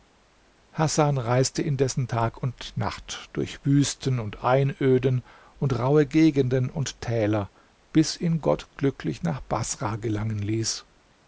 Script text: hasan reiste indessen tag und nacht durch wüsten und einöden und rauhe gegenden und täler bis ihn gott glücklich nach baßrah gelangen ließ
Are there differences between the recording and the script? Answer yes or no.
no